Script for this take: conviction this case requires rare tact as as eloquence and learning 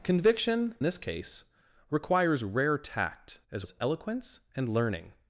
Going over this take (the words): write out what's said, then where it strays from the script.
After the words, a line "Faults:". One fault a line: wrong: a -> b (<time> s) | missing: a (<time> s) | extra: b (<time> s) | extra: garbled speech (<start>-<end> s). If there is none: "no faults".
conviction this case requires rare tact as as eloquence and learning
Faults:
no faults